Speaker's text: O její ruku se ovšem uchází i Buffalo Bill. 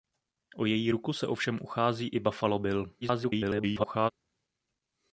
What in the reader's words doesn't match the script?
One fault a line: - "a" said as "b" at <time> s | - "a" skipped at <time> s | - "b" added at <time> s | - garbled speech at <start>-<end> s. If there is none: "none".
- garbled speech at 3.0-4.1 s